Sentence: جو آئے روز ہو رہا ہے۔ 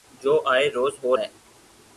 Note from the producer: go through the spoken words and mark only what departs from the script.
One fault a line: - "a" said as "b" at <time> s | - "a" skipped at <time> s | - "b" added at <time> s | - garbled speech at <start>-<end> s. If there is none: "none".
- "رہا" skipped at 1.2 s